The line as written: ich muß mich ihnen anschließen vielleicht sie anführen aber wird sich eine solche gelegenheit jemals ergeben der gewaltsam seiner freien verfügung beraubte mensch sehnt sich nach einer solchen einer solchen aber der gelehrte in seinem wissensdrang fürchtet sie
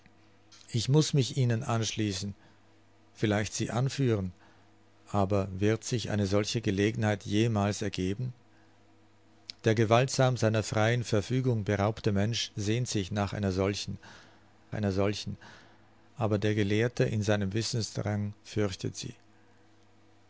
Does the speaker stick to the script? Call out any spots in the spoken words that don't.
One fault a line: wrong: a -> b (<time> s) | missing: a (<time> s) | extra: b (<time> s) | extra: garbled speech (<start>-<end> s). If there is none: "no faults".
no faults